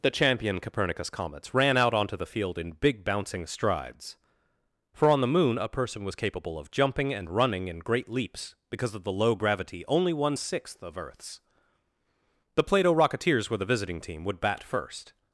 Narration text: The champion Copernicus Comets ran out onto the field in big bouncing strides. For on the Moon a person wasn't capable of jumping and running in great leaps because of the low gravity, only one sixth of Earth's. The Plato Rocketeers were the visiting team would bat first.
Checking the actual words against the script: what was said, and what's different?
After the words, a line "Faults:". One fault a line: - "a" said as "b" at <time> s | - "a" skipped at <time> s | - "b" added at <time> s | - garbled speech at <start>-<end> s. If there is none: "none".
The champion Copernicus Comets ran out onto the field in big bouncing strides. For on the Moon a person was capable of jumping and running in great leaps because of the low gravity, only one sixth of Earth's. The Plato Rocketeers were the visiting team would bat first.
Faults:
- "wasn't" said as "was" at 6.0 s